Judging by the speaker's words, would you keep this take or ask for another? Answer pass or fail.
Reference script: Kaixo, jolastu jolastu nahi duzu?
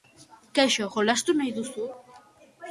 fail